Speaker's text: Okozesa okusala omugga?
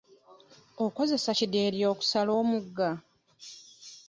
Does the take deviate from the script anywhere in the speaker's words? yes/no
yes